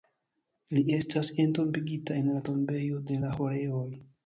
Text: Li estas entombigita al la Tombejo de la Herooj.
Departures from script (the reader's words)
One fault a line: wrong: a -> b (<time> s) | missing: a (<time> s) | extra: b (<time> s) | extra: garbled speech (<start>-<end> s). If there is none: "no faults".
wrong: al -> en (2.2 s)